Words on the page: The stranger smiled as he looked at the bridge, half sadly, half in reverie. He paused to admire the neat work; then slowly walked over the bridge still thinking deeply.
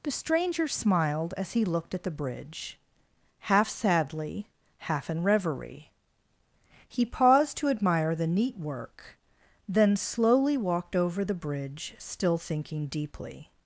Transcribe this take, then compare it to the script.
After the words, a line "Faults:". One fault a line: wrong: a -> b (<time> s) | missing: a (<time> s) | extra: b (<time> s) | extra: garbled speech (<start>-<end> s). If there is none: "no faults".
The stranger smiled as he looked at the bridge, half sadly, half in reverie. He paused to admire the neat work; then slowly walked over the bridge still thinking deeply.
Faults:
no faults